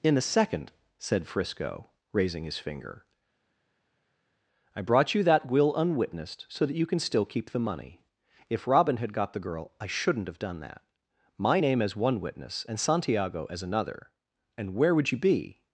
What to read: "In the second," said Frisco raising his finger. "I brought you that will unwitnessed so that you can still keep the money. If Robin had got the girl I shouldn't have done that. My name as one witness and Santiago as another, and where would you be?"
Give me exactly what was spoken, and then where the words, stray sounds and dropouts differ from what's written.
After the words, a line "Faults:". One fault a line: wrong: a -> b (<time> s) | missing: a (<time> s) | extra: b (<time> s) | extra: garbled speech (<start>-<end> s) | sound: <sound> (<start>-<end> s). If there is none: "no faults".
"In a second," said Frisco raising his finger. "I brought you that will unwitnessed so that you can still keep the money. If Robin had got the girl I shouldn't have done that. My name as one witness and Santiago as another, and where would you be?"
Faults:
wrong: the -> a (0.2 s)